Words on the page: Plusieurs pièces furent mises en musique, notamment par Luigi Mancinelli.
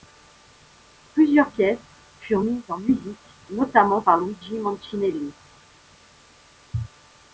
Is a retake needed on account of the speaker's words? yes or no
no